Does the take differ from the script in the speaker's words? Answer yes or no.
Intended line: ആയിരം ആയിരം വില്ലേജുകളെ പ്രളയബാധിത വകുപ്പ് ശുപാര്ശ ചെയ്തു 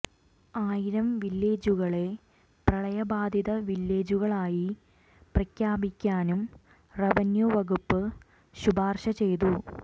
yes